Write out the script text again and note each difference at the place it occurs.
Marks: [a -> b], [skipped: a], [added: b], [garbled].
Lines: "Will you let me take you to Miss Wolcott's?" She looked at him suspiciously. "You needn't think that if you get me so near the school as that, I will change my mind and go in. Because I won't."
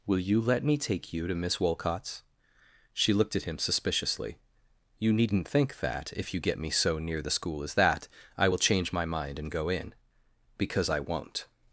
"Will you let me take you to Miss Wolcott's?" She looked at him suspiciously. "You needn't think that if you get me so near the school as that, I will change my mind and go in. Because I won't."